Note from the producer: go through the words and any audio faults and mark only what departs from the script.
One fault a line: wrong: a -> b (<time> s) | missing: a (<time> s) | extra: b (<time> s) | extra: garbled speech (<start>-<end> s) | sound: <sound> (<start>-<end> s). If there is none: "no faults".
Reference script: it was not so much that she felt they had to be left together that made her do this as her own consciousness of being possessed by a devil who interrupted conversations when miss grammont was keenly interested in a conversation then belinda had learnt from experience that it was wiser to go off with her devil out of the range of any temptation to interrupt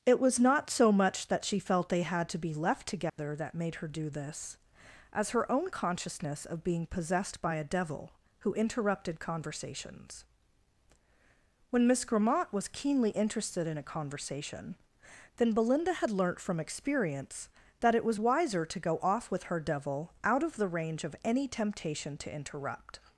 sound: dropout (3.1-3.2 s)